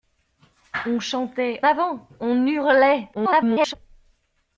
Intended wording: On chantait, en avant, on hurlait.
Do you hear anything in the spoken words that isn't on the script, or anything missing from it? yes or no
yes